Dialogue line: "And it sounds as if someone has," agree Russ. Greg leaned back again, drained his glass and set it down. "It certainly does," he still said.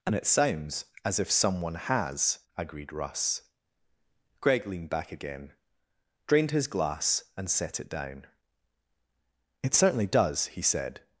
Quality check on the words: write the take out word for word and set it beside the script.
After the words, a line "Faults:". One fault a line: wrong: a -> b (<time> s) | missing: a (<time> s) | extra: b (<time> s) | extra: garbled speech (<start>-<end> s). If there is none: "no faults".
"And it sounds as if someone has," agreed Russ. Greg leaned back again, drained his glass and set it down. "It certainly does," he said.
Faults:
wrong: agree -> agreed (2.6 s)
missing: still (10.6 s)